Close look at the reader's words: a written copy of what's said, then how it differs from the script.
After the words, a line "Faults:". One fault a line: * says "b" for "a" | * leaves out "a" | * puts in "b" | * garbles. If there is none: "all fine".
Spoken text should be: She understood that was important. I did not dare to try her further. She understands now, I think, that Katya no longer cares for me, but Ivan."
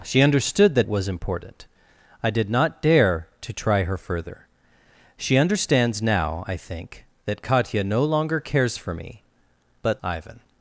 She understood that was important. I did not dare to try her further. She understands now, I think, that Katya no longer cares for me, but Ivan."
Faults:
all fine